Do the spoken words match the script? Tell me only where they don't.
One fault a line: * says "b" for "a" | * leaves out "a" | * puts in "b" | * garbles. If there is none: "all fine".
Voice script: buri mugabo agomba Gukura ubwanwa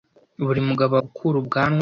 * leaves out "agomba"